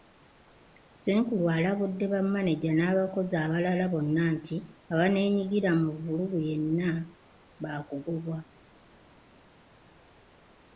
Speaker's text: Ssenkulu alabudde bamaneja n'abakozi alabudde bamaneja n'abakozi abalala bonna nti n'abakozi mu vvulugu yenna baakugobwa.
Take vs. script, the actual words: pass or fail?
fail